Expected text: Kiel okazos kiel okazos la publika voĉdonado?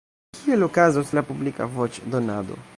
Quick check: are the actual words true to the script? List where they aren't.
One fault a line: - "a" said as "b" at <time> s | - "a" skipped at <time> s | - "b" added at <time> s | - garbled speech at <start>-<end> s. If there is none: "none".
- "kiel okazos" skipped at 1.1 s